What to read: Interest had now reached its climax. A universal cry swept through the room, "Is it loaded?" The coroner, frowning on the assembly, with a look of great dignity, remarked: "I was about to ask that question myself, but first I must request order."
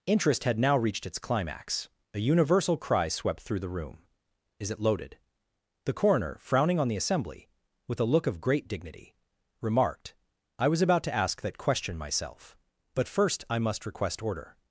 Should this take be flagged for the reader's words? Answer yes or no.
no